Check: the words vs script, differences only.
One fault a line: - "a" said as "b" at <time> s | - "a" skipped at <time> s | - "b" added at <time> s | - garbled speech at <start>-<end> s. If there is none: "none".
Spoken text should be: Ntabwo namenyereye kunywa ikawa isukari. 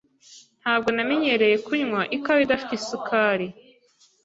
- "idafite" added at 2.5 s